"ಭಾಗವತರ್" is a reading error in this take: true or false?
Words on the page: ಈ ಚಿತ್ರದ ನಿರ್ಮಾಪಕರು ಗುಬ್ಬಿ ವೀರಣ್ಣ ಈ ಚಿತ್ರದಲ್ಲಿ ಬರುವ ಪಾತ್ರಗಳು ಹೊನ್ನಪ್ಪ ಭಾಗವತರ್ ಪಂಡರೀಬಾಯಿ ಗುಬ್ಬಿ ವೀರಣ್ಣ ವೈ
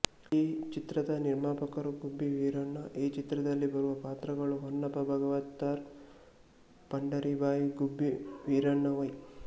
false